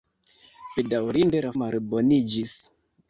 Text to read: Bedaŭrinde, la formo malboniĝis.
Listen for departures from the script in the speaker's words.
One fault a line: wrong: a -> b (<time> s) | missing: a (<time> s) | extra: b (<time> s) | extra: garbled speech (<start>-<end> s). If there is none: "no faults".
missing: formo (1.5 s)